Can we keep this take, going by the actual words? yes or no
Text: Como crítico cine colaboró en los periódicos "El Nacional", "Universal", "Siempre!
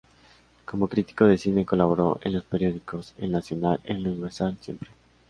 no